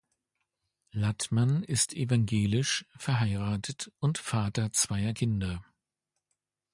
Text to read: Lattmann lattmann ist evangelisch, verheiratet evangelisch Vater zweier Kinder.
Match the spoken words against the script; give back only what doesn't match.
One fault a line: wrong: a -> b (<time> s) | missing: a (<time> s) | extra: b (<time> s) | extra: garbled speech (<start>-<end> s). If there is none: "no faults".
missing: lattmann (1.6 s)
wrong: evangelisch -> und (4.0 s)